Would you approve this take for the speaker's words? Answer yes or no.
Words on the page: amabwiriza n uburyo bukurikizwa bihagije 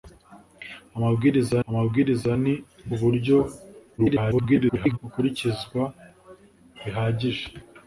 no